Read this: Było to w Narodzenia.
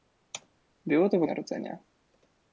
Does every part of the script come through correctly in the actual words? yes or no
yes